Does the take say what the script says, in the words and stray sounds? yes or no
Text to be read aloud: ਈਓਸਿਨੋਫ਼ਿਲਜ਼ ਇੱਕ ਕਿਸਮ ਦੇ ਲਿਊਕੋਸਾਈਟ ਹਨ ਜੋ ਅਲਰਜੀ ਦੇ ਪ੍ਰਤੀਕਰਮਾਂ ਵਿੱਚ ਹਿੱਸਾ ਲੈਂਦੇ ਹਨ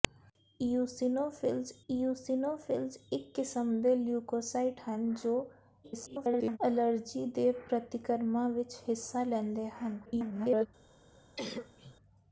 no